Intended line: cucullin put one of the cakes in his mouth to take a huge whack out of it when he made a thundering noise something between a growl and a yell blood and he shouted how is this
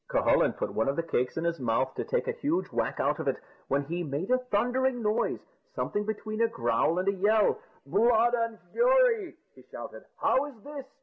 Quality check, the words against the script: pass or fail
fail